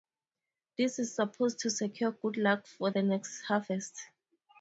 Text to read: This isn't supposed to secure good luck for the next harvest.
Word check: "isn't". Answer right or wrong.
wrong